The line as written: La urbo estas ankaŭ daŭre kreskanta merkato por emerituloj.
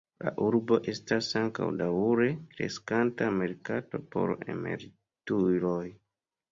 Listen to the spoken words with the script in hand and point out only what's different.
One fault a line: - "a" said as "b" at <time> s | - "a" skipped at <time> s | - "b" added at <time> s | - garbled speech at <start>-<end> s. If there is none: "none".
none